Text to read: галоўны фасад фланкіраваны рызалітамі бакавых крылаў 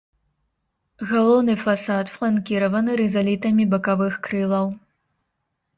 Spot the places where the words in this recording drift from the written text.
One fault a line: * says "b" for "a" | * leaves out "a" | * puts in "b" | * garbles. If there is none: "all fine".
all fine